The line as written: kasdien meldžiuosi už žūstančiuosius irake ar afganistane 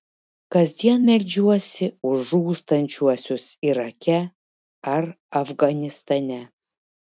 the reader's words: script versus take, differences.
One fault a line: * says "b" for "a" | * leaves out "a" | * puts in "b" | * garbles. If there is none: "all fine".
all fine